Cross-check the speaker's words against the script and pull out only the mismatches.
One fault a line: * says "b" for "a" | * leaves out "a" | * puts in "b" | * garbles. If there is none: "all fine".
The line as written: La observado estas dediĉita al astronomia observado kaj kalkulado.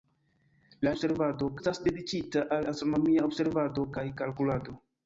all fine